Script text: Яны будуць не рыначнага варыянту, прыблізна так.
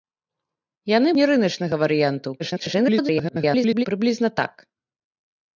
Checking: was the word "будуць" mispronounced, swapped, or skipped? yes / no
yes